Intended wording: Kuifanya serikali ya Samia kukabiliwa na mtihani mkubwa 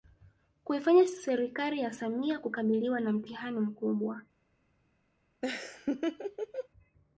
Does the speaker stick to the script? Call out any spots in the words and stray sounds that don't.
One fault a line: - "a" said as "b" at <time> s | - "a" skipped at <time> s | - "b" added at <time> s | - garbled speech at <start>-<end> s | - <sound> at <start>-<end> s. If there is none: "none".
- laugh at 5.4-6.7 s